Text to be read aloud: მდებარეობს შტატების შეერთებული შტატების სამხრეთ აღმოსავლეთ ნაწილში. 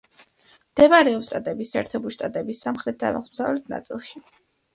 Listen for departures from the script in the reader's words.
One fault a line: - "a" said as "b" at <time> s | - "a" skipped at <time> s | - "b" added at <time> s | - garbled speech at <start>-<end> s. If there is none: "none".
none